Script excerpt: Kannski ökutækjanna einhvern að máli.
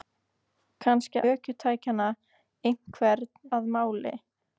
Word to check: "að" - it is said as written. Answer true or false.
true